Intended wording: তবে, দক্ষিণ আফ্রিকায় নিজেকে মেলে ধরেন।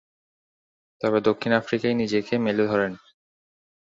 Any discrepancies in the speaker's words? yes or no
no